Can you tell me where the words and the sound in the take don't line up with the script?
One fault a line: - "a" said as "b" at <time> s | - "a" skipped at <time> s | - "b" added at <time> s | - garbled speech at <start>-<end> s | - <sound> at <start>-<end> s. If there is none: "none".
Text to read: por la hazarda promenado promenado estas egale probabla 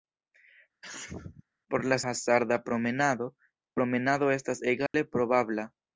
- sneeze at 0.8-1.4 s
- dropout at 4.9-4.9 s